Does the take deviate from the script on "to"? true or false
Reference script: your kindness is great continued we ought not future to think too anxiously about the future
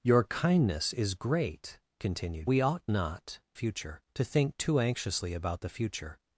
false